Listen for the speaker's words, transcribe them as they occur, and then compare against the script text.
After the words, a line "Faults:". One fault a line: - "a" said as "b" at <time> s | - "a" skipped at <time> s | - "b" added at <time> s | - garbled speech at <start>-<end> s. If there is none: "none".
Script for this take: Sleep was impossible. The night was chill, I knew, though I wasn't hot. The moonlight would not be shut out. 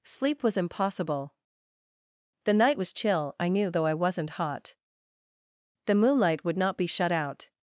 Sleep was impossible. The night was chill, I knew, though I wasn't hot. The moonlight would not be shut out.
Faults:
none